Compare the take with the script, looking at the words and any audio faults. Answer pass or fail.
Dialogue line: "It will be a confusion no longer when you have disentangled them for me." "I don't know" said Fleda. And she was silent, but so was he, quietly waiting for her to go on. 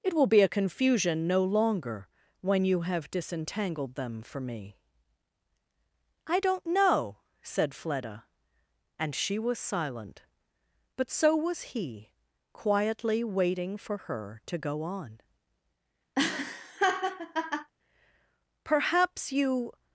fail